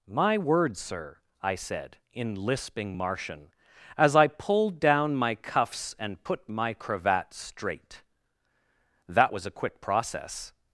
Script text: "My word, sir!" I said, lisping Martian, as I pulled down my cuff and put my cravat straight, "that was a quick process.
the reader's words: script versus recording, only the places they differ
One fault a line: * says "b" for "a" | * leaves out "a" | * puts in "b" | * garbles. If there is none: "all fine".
* puts in "in"
* says "cuffs" for "cuff"